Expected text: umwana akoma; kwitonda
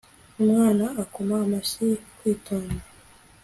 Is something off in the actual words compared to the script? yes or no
yes